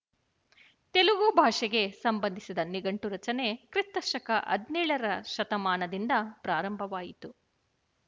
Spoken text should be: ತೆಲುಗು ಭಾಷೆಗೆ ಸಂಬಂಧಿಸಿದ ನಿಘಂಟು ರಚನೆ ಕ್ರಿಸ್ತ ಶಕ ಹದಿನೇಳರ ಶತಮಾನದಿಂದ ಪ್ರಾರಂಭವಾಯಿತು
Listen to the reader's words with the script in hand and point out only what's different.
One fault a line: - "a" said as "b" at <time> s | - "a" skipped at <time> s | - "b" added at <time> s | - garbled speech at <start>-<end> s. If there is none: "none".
none